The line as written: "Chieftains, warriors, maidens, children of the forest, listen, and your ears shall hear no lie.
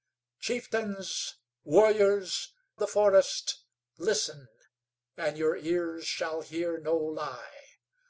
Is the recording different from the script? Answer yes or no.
yes